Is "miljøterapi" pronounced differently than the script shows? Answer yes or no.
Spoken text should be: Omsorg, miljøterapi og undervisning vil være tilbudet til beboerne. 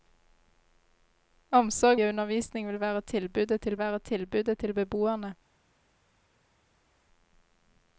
yes